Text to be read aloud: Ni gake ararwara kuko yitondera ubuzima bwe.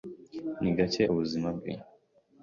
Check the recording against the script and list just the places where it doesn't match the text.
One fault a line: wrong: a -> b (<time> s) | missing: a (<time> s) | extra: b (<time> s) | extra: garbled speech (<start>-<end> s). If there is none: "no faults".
missing: ararwara kuko yitondera (1.0 s)